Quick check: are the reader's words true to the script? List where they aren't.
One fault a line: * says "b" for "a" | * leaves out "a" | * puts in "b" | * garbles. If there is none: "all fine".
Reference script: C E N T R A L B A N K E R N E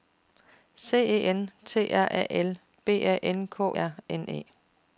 * leaves out "E"